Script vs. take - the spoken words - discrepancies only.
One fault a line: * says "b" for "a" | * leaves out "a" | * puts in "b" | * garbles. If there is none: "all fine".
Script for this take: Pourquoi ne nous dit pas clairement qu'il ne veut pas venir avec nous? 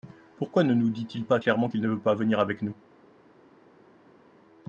* puts in "il"